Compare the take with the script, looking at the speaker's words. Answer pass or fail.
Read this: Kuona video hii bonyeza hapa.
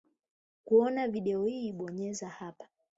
pass